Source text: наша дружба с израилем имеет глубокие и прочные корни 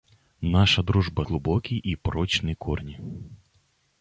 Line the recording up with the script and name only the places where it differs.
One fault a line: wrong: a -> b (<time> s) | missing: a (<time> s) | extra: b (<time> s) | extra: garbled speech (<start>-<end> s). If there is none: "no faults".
missing: с израилем имеет (1.2 s)